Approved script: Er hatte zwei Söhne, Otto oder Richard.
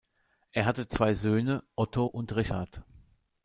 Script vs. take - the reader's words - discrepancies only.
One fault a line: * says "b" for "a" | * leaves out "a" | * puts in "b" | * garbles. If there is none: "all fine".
* says "und" for "oder"